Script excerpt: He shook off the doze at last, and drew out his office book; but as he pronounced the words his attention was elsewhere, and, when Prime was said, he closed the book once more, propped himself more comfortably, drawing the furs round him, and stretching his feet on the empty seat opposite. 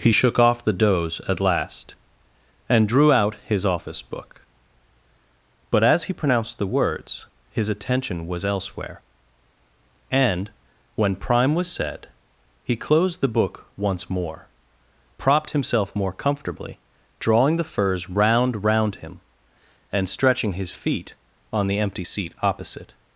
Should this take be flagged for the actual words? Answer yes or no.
yes